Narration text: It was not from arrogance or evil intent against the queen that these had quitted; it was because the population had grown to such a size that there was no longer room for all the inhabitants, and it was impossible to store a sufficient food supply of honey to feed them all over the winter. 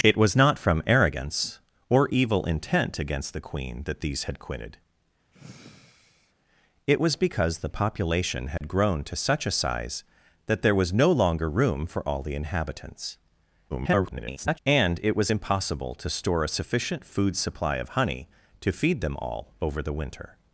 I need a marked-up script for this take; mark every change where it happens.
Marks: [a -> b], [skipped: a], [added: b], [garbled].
It was not from arrogance or evil intent against the queen that these had quitted; it was because the population had grown to such a size that there was no longer room for all the inhabitants, [garbled] and it was impossible to store a sufficient food supply of honey to feed them all over the winter.